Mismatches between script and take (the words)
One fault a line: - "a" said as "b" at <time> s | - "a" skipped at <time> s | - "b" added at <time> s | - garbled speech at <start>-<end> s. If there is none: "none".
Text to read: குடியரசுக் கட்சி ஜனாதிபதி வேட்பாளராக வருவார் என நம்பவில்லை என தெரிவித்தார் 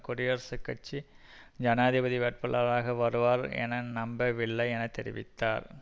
none